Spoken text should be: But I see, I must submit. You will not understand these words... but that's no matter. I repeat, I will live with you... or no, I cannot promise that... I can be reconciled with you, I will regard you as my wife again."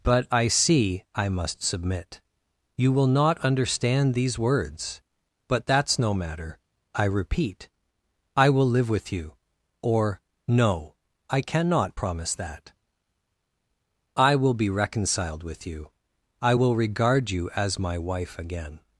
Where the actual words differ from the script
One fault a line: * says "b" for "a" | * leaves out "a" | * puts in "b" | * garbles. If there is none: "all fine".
* says "will" for "can"